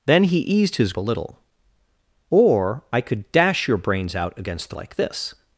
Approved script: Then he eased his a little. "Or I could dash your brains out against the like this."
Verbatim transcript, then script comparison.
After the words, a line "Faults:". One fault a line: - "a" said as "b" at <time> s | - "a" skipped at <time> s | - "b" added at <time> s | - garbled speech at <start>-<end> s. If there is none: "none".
Then he eased his a little. "Or I could dash your brains out against the like this."
Faults:
none